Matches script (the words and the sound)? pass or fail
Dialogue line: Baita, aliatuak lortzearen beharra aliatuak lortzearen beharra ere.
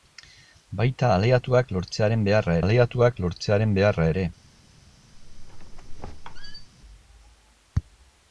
fail